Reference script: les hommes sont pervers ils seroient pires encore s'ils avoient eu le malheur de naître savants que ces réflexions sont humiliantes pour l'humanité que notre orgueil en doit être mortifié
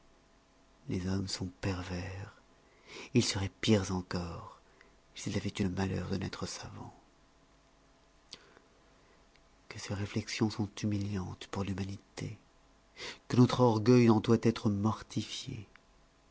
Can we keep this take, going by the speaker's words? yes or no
yes